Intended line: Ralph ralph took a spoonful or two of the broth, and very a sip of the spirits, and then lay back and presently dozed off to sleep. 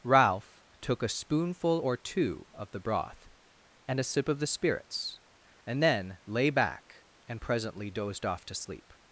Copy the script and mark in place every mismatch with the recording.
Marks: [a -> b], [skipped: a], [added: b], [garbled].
Ralph [skipped: ralph] took a spoonful or two of the broth, and [skipped: very] a sip of the spirits, and then lay back and presently dozed off to sleep.